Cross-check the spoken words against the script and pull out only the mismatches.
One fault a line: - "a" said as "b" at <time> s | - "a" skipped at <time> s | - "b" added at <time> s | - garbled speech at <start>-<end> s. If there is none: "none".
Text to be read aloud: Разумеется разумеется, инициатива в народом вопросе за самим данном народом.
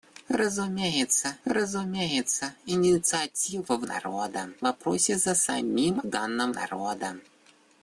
none